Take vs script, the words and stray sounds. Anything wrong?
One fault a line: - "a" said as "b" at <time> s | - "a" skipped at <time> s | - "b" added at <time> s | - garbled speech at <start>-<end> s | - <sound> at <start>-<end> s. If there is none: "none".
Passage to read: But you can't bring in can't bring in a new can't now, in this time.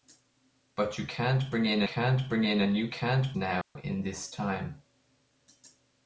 - dropout at 3.6-3.8 s